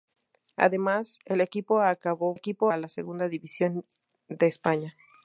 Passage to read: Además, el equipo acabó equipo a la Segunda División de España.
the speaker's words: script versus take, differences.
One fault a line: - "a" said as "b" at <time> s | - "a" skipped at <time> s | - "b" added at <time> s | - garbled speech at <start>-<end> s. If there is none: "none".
none